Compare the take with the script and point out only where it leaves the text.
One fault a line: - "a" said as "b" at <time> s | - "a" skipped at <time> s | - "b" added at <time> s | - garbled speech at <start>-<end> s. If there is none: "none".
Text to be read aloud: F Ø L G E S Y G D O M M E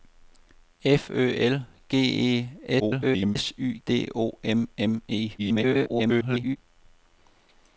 - garbled speech at 2.8-3.4 s
- "G" skipped at 3.8 s
- garbled speech at 5.4-6.6 s